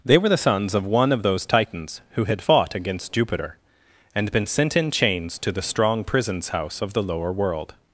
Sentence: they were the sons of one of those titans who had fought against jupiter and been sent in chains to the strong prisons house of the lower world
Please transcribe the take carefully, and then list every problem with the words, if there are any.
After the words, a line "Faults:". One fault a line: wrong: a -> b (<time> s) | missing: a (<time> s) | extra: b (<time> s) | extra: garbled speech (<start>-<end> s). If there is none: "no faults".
they were the sons of one of those titans who had fought against jupiter and been sent in chains to the strong prisons house of the lower world
Faults:
no faults